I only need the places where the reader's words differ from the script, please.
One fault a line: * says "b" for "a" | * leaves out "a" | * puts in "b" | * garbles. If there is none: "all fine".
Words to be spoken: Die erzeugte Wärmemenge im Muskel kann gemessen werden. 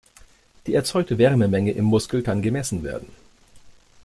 all fine